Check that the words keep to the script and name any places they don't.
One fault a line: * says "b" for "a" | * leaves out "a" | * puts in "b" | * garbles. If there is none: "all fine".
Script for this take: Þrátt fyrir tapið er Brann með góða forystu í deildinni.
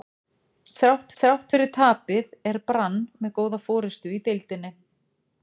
* puts in "þrátt"